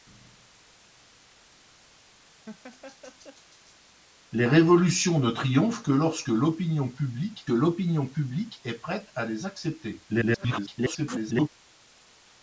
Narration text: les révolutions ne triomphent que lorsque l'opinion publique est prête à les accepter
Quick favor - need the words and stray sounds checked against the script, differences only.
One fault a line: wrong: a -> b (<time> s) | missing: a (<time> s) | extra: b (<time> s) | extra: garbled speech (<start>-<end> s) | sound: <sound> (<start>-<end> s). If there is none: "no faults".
sound: laugh (2.5-3.8 s)
extra: l'opinion publique (7.5 s)
extra: garbled speech (10.1-11.5 s)